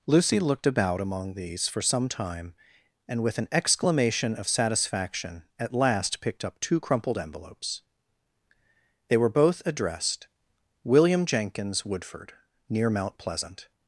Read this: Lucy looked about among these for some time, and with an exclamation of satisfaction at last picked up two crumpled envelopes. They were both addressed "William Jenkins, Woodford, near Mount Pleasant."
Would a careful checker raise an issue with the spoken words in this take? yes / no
no